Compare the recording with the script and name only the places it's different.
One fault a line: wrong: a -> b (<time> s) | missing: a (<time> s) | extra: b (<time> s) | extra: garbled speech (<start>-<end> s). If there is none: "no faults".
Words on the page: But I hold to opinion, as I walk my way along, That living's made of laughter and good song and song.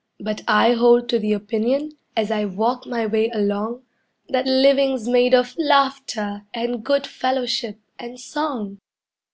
extra: the (1.2 s)
wrong: song -> fellowship (7.1 s)